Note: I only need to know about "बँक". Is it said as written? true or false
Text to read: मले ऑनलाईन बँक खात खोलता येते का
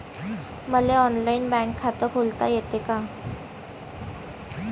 true